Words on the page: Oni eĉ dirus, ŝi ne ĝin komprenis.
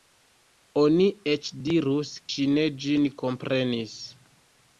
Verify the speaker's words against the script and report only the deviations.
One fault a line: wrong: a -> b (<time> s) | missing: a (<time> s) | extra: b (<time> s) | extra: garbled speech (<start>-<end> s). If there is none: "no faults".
no faults